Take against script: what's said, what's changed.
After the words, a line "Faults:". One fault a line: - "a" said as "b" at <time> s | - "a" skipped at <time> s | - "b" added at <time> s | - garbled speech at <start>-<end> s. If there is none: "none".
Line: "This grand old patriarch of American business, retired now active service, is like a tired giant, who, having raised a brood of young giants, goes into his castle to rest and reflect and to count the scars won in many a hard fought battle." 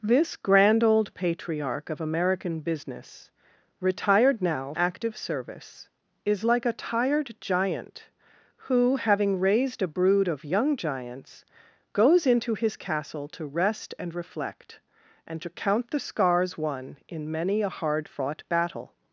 "This grand old patriarch of American business, retired now active service, is like a tired giant, who, having raised a brood of young giants, goes into his castle to rest and reflect and to count the scars won in many a hard fought battle."
Faults:
none